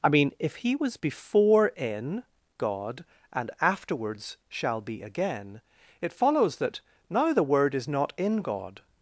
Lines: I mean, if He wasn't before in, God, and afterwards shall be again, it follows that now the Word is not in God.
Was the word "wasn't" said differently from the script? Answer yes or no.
yes